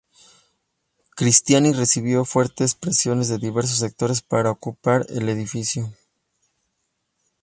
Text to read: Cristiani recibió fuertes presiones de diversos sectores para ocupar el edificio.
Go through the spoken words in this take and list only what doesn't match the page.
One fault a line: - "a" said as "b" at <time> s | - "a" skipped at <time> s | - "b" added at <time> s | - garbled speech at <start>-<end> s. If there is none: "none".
none